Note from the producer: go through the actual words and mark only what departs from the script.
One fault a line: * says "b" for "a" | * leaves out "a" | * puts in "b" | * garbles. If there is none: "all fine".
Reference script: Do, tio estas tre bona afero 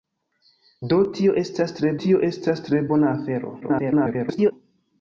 * puts in "tio estas tre"
* garbles